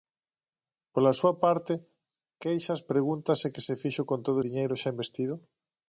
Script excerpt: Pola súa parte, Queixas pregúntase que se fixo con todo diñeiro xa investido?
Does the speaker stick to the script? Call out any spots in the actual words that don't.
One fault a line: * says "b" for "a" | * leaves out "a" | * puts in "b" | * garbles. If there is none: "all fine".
all fine